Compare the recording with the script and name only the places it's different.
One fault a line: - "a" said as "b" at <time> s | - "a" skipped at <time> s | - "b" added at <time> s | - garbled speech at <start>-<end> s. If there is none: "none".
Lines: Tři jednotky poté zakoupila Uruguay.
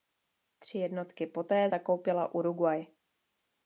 none